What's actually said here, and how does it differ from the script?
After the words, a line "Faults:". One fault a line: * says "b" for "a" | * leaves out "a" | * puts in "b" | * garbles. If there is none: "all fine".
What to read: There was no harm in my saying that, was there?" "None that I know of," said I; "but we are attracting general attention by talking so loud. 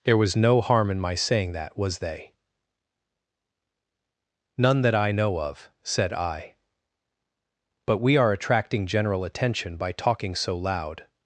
There was no harm in my saying that, was they?" "None that I know of," said I; "but we are attracting general attention by talking so loud.
Faults:
* says "they" for "there"